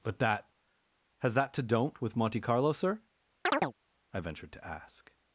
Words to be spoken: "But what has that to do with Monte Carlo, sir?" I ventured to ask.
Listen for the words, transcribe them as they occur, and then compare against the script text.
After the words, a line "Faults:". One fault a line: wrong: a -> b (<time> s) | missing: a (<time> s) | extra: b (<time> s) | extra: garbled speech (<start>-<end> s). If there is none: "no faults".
"But that has that to don't with Monte Carlo, sir?" I ventured to ask.
Faults:
wrong: what -> that (0.2 s)
wrong: do -> don't (1.6 s)